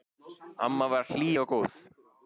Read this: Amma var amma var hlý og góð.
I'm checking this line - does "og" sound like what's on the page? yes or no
yes